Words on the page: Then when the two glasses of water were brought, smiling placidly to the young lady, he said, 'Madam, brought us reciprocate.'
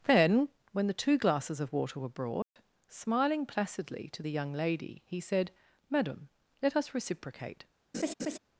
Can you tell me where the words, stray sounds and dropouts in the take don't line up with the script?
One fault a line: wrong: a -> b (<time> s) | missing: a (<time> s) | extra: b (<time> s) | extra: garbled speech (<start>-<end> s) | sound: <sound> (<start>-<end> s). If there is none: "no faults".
sound: dropout (2.4-2.6 s)
wrong: brought -> let (6.6 s)
sound: laugh (7.9-8.4 s)